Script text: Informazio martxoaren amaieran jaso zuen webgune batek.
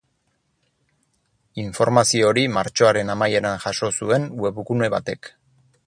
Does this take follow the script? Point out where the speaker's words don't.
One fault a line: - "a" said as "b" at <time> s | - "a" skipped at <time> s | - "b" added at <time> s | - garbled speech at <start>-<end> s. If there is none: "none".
- "hori" added at 2.3 s